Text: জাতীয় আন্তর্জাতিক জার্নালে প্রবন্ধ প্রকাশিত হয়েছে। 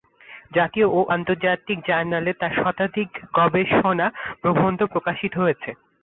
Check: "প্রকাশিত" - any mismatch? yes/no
no